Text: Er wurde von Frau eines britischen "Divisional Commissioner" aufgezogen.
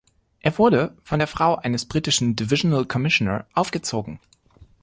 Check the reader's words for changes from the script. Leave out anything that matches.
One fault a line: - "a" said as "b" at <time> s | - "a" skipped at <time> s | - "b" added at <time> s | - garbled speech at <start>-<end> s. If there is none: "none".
- "der" added at 1.2 s